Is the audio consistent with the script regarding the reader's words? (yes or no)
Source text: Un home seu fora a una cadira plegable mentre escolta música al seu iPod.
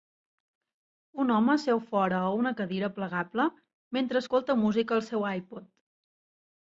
yes